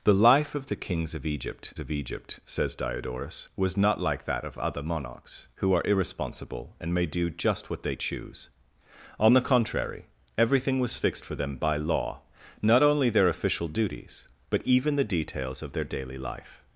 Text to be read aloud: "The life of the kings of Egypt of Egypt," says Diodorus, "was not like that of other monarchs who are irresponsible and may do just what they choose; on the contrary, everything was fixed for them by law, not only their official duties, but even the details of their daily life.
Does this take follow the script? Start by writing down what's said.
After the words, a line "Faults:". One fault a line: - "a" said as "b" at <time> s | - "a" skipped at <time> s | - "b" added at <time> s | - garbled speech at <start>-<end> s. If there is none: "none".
"The life of the kings of Egypt of Egypt," says Diodorus, "was not like that of other monarchs who are irresponsible and may do just what they choose; on the contrary, everything was fixed for them by law, not only their official duties, but even the details of their daily life.
Faults:
none